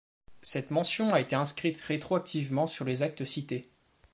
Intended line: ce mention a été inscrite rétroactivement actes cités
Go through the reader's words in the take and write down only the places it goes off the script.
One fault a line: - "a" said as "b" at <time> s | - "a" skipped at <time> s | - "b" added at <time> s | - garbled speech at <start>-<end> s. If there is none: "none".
- "ce" said as "cette" at 0.4 s
- "sur les" added at 2.6 s